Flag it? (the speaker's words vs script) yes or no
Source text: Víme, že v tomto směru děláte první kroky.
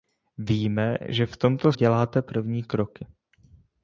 yes